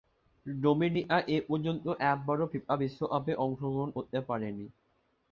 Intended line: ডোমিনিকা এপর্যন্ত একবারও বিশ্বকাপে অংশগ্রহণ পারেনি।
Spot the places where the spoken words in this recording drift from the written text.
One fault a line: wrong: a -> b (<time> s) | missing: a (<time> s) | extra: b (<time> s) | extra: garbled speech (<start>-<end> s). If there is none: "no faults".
extra: ফিফা (2.5 s)
extra: করতে (4.0 s)